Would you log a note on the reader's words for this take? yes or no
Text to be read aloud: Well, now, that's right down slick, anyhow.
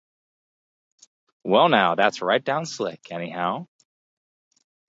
no